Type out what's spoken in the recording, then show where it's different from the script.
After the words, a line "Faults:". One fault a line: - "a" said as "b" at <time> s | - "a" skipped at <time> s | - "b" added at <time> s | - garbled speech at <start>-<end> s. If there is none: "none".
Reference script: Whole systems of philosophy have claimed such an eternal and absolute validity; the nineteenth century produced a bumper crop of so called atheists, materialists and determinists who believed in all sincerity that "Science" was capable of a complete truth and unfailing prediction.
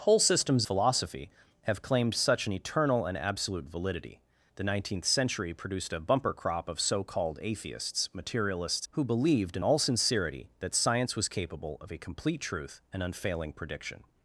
Whole systems philosophy have claimed such an eternal and absolute validity; the nineteenth century produced a bumper crop of so called atheists, materialists who believed in all sincerity that "Science" was capable of a complete truth and unfailing prediction.
Faults:
- "of" skipped at 0.7 s
- "and determinists" skipped at 8.8 s